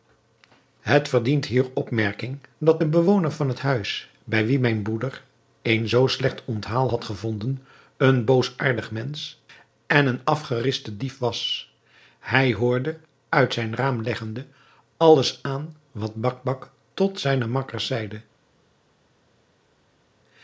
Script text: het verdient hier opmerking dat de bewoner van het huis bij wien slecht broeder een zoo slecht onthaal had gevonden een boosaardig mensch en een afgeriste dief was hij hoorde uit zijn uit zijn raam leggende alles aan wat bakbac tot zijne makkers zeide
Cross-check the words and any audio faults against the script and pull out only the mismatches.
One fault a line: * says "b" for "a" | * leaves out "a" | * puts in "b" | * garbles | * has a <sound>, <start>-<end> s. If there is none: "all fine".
* says "mijn" for "slecht"
* leaves out "uit zijn"